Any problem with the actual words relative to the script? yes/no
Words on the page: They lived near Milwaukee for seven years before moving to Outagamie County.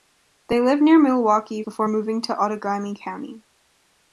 yes